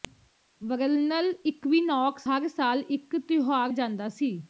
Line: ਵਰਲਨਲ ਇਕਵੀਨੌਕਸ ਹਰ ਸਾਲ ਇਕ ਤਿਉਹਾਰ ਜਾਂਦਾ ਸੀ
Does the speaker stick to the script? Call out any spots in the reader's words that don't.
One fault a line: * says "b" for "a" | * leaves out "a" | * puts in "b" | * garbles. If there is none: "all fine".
all fine